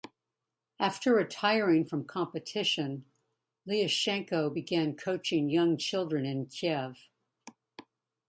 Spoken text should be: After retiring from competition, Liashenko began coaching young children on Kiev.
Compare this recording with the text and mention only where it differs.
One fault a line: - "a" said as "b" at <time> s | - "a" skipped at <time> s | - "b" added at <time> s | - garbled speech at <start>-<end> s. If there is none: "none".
- "on" said as "in" at 6.3 s